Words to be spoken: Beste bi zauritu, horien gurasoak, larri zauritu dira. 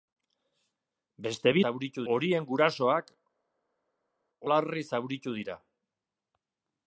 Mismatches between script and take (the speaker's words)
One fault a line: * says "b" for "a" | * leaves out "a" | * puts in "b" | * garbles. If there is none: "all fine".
all fine